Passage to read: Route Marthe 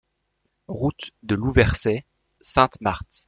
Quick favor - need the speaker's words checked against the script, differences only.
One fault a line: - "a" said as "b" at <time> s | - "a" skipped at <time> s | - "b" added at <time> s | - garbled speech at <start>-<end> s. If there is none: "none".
- "de Louversey Sainte" added at 1.2 s